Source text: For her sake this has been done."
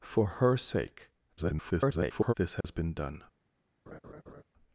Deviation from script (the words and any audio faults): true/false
true